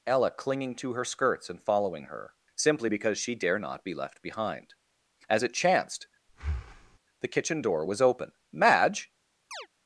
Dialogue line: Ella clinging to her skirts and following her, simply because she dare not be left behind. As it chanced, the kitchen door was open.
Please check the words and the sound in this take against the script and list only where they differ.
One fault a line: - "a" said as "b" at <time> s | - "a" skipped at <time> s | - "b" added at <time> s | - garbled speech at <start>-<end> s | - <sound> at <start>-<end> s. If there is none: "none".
- breath at 6.3-7.0 s
- "Madge" added at 8.5 s
- chirp at 9.5-9.7 s